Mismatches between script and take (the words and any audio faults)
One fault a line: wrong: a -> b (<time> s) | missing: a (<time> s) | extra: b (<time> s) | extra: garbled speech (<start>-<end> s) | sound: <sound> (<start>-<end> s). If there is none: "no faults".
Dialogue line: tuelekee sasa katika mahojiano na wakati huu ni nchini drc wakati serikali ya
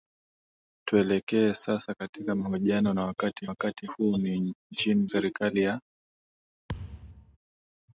extra: wakati (3.5 s)
missing: drc wakati (5.1 s)
sound: thud (6.7-7.4 s)